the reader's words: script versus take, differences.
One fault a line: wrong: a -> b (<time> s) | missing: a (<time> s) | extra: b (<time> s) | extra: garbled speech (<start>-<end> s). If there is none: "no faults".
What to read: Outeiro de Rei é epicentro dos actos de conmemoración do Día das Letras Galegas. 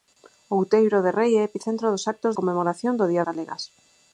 missing: de (2.3 s)
missing: das Letras (3.3 s)